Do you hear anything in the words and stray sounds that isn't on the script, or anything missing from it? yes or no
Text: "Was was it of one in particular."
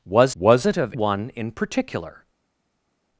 no